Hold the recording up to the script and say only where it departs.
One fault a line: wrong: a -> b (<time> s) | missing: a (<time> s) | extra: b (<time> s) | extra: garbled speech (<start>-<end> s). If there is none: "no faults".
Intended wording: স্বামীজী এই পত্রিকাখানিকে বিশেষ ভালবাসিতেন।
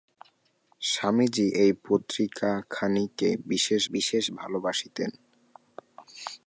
extra: বিশেষ (3.9 s)